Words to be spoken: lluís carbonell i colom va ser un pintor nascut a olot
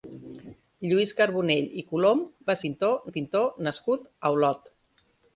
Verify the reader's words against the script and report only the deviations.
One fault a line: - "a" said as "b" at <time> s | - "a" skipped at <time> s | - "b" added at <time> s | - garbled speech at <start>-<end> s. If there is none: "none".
- "ser" said as "pintor" at 2.7 s